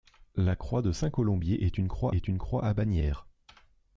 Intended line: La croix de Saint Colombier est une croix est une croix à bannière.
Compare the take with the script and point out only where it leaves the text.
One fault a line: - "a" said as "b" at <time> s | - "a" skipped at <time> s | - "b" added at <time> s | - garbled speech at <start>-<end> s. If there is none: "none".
none